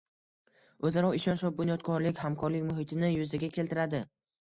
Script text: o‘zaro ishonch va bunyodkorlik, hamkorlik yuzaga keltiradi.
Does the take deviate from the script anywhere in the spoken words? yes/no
yes